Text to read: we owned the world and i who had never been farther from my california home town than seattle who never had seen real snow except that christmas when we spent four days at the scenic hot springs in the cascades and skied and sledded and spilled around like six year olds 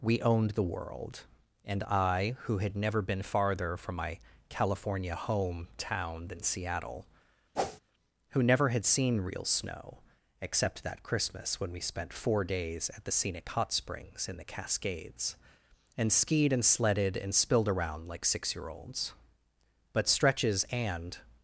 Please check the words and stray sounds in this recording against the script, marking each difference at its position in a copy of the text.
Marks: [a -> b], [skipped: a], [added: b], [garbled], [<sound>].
we owned the world and i who had never been farther from my california home town than seattle [whoosh] who never had seen real snow except that christmas when we spent four days at the scenic hot springs in the cascades and skied and sledded and spilled around like six year olds [added: but stretches and]